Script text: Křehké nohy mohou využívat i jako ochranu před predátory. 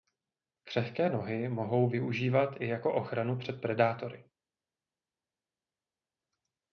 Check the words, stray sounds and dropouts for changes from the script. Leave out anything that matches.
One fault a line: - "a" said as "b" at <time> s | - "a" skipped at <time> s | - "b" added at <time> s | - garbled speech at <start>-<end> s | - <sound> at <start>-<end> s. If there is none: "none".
none